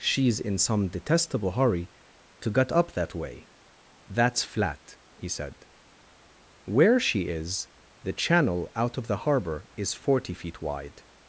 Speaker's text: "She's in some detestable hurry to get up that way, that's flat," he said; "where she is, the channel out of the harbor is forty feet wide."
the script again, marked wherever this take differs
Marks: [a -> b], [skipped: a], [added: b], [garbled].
"She's in some detestable hurry to get up that way, that's flat," he said; "where she is, the channel out of the harbor is forty feet wide."